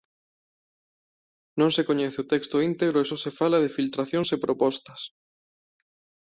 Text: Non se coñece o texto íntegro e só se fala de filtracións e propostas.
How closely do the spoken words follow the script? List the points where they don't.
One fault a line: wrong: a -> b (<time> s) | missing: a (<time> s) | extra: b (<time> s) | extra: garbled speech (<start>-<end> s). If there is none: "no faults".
no faults